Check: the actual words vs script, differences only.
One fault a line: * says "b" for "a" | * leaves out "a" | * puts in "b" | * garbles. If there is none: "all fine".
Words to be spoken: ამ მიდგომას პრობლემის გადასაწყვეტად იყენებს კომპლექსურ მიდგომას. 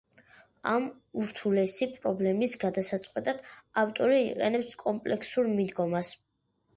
* says "ურთულესი" for "მიდგომას"
* puts in "ავტორი"